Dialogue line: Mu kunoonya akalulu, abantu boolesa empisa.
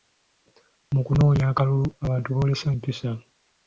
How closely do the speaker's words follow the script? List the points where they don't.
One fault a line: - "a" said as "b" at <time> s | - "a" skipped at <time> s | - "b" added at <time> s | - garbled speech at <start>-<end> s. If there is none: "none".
none